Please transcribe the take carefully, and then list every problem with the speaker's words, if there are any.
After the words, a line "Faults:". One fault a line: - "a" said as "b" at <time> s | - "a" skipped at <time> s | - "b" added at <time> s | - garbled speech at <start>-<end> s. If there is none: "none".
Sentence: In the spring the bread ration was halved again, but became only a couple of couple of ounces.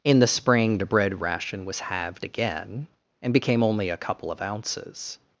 In the spring the bread ration was halved again, and became only a couple of ounces.
Faults:
- "but" said as "and" at 3.2 s
- "couple of" skipped at 4.4 s